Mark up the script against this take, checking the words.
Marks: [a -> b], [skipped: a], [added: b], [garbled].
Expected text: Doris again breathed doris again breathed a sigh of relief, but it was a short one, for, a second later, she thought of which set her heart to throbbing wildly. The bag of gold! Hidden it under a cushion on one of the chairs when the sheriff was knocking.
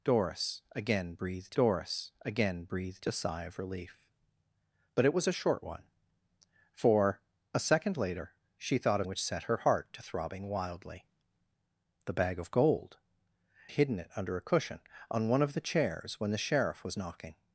Doris again breathed doris again breathed a sigh of relief, but it was a short one, for, a second later, she thought of which set her heart to throbbing wildly. The bag of gold! Hidden it under a cushion on one of the chairs when the sheriff was knocking.